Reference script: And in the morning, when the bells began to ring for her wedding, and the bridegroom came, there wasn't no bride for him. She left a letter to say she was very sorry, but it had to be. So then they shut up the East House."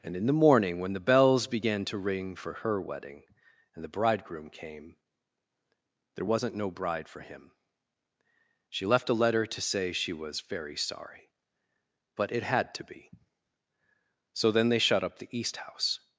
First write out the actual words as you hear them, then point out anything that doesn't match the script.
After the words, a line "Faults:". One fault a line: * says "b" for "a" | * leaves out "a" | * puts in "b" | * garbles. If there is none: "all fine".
And in the morning, when the bells began to ring for her wedding, and the bridegroom came, there wasn't no bride for him. She left a letter to say she was very sorry, but it had to be. So then they shut up the East House."
Faults:
all fine